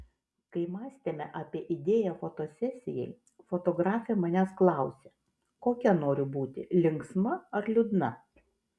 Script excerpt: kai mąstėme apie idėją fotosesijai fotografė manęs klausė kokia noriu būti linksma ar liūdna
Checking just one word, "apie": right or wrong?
right